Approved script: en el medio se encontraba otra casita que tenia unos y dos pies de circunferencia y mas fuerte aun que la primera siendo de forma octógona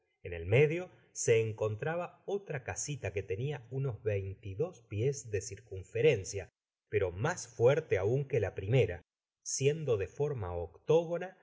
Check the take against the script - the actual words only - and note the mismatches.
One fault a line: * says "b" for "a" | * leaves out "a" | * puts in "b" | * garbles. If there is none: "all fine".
* puts in "veinte"
* says "pero" for "y"